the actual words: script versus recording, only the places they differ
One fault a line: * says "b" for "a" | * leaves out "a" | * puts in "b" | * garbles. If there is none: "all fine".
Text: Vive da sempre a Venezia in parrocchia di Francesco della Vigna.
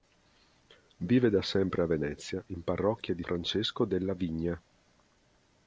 all fine